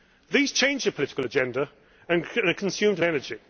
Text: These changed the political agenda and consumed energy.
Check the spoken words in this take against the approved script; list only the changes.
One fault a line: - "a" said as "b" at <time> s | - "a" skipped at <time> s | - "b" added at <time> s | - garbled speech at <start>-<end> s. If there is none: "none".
none